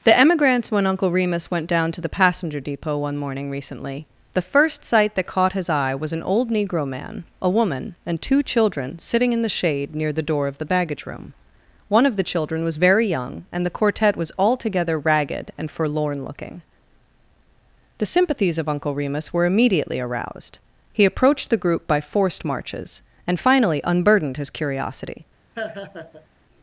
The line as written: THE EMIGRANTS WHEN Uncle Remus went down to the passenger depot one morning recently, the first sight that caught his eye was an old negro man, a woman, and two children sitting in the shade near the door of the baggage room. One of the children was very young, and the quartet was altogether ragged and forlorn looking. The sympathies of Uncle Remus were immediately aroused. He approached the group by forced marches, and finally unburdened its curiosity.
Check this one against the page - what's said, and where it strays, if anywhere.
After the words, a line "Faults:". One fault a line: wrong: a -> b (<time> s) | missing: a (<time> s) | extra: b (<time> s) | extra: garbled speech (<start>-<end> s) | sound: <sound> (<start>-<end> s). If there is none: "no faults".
THE EMIGRANTS WHEN Uncle Remus went down to the passenger depot one morning recently, the first sight that caught his eye was an old negro man, a woman, and two children sitting in the shade near the door of the baggage room. One of the children was very young, and the quartet was altogether ragged and forlorn looking. The sympathies of Uncle Remus were immediately aroused. He approached the group by forced marches, and finally unburdened his curiosity.
Faults:
wrong: its -> his (24.4 s)
sound: laugh (25.5-26.3 s)